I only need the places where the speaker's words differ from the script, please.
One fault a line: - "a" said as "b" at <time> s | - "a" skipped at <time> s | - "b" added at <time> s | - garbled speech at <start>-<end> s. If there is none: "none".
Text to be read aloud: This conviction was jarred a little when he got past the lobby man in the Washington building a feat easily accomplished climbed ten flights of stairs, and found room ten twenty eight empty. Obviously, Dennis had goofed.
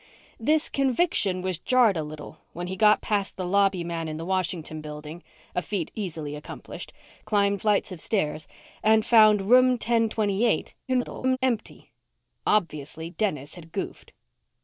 - "ten" skipped at 7.6 s
- garbled speech at 10.9-11.4 s